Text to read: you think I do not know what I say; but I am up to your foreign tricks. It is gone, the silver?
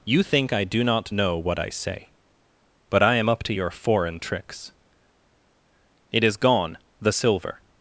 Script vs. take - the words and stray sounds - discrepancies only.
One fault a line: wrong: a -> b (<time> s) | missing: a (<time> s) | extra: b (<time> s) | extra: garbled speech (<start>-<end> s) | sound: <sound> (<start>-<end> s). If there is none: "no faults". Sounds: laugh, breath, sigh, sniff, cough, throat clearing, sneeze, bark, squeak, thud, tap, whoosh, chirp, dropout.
no faults